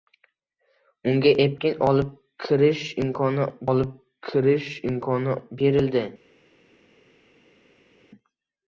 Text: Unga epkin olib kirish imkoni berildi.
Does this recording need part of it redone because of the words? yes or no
yes